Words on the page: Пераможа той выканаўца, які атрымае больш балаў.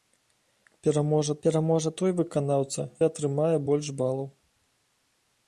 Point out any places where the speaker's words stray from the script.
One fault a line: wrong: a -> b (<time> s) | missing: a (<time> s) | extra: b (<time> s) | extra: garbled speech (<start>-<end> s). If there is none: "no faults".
extra: пераможа (1.4 s)
missing: які (2.8 s)